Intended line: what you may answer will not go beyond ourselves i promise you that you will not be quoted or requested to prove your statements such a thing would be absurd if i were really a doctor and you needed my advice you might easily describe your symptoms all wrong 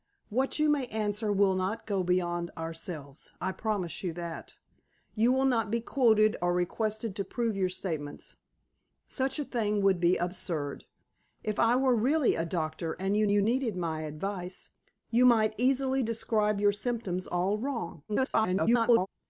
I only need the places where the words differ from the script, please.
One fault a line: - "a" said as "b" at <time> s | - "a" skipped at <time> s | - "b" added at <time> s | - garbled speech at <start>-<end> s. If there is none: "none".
- "you" added at 13.3 s
- garbled speech at 18.1-19.1 s